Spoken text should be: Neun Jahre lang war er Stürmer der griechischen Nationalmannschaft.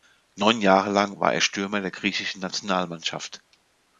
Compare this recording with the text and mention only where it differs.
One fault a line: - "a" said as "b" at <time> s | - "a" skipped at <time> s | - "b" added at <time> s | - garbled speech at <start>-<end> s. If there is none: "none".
none